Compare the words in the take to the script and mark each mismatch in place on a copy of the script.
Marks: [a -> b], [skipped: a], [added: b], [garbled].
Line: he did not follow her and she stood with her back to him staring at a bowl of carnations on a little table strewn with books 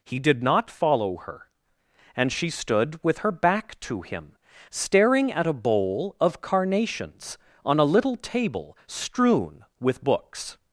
he did not follow her and she stood with her back to him staring at a bowl of carnations on a little table strewn with books